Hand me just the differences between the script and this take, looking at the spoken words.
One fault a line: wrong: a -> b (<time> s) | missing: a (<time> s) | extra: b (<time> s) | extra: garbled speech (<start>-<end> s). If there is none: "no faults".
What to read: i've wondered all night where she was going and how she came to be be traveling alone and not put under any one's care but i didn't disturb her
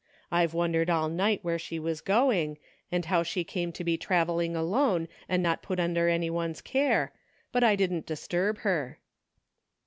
missing: be (4.0 s)